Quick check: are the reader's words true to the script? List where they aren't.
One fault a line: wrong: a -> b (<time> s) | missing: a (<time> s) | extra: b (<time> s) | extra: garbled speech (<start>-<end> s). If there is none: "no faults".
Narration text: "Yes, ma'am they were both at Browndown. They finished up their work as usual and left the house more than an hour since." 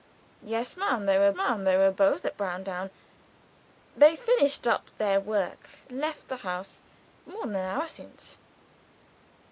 extra: ma'am they were (1.3 s)
missing: as usual and (5.7 s)